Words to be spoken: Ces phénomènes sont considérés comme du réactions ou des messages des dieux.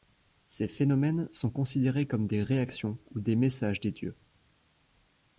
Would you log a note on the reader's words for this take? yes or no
yes